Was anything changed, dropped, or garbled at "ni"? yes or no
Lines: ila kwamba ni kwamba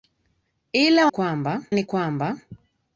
no